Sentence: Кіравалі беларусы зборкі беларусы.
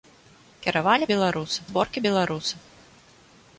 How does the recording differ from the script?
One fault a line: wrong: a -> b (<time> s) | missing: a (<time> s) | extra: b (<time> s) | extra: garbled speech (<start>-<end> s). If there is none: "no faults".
no faults